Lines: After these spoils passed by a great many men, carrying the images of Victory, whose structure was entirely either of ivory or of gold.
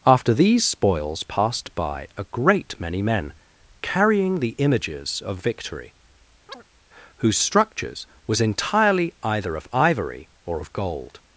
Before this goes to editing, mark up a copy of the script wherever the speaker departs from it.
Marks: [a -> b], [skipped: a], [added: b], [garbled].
After these spoils passed by a great many men, carrying the images of Victory, whose [structure -> structures] was entirely either of ivory or of gold.